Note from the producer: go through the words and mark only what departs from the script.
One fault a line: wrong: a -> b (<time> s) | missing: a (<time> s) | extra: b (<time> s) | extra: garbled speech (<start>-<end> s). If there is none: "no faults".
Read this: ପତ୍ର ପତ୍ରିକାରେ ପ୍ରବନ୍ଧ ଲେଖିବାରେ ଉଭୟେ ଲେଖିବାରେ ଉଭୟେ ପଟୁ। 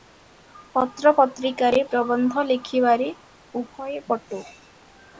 missing: ଲେଖିବାରେ ଉଭୟେ (4.0 s)